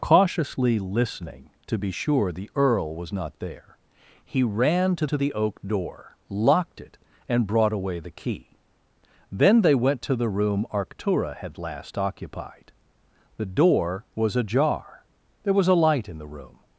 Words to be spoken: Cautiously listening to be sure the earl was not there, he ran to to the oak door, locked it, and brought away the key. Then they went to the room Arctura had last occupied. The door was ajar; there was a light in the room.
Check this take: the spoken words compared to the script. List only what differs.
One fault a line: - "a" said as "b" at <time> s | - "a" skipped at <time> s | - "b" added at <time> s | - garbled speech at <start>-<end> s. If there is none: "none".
none